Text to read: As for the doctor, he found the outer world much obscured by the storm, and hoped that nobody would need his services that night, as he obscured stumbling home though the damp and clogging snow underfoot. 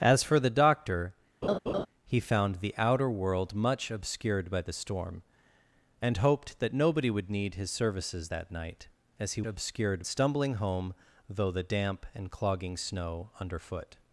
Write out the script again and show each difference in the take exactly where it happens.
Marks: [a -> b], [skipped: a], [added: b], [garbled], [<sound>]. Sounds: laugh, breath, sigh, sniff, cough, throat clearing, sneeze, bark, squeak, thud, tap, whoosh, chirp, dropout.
As for the doctor, [laugh] he found the outer world much obscured by the storm, and hoped that nobody would need his services that night, as he obscured stumbling home though the damp and clogging snow underfoot.